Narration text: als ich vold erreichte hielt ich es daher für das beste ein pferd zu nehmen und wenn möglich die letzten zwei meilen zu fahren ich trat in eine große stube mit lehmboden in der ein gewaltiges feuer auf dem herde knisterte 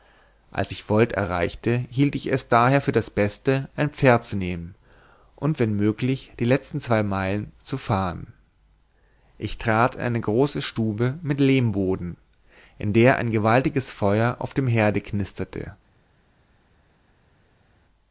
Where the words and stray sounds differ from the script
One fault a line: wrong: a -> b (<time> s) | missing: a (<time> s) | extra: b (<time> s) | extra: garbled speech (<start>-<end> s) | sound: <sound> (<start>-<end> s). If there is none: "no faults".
no faults